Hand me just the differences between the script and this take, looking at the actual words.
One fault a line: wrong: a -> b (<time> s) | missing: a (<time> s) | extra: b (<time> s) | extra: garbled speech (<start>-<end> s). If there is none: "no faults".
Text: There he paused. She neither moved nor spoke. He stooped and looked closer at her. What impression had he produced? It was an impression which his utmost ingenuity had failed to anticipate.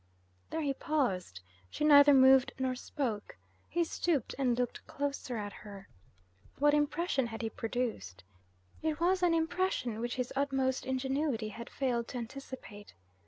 no faults